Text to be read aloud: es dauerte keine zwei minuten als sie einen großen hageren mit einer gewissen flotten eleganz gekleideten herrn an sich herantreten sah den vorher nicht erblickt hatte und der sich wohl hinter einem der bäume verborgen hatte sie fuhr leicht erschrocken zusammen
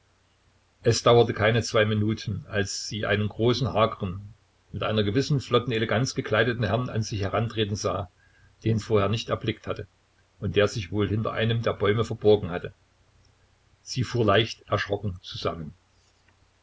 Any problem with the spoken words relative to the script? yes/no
no